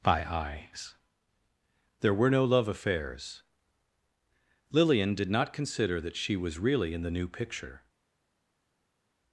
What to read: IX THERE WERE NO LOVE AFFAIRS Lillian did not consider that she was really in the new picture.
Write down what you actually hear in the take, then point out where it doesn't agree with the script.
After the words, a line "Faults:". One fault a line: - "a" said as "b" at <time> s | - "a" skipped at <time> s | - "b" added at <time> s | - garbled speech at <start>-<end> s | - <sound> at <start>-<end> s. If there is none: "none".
By eyes THERE WERE NO LOVE AFFAIRS Lillian did not consider that she was really in the new picture.
Faults:
- "IX" said as "By eyes" at 0.0 s